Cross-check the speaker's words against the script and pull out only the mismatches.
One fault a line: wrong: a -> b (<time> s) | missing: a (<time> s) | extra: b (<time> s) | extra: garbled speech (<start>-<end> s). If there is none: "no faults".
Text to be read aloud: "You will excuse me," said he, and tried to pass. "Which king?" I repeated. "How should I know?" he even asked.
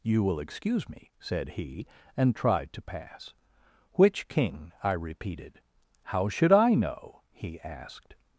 missing: even (7.6 s)